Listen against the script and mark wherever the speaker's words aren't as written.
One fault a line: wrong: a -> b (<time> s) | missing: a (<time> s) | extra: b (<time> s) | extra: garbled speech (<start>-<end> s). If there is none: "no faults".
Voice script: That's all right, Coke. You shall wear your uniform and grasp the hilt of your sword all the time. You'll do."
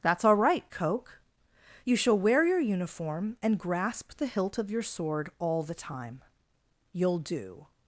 no faults